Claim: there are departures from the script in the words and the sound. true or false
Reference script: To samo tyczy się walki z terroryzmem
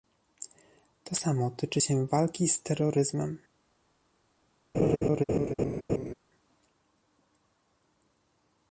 true